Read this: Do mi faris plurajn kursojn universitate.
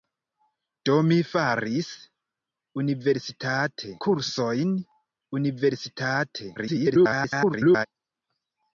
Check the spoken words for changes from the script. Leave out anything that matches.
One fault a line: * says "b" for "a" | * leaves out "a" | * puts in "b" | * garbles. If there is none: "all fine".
* says "universitate" for "plurajn"
* garbles